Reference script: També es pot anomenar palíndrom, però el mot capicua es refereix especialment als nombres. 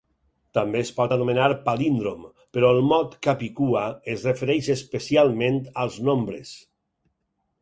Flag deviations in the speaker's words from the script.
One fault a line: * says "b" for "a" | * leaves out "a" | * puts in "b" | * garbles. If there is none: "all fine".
all fine